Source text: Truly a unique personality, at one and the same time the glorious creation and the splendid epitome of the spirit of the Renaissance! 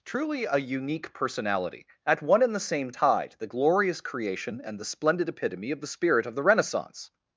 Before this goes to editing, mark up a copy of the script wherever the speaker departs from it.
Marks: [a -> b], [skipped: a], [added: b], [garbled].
Truly a unique personality, at one and the same [time -> tide] the glorious creation and the splendid epitome of the spirit of the Renaissance!